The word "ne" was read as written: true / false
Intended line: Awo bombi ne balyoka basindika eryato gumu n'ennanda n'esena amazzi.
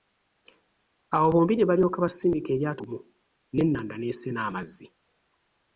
true